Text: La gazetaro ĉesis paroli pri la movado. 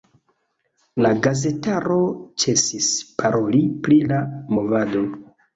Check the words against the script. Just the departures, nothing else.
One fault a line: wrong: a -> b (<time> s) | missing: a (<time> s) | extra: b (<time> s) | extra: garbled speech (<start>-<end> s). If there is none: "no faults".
no faults